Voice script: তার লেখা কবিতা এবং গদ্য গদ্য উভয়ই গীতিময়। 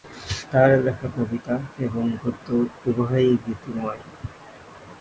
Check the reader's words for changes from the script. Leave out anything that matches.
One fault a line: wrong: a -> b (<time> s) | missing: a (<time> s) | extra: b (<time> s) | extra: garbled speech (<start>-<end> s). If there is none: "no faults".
missing: গদ্য (2.5 s)